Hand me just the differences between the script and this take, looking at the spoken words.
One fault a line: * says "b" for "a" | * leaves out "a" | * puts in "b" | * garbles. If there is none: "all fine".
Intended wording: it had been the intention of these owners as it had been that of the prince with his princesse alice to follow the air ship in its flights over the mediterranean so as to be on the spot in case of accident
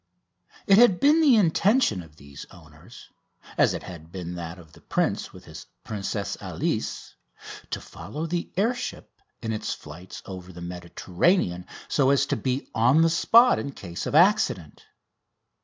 all fine